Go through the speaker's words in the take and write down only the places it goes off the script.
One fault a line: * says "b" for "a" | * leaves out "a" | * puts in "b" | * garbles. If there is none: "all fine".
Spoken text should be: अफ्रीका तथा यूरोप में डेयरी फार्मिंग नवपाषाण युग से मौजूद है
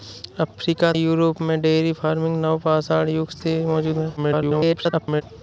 * leaves out "तथा"
* garbles